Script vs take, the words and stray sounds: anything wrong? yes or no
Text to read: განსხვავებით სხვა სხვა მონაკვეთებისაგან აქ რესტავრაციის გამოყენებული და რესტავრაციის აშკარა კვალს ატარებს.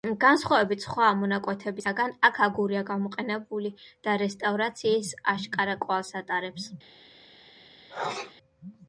yes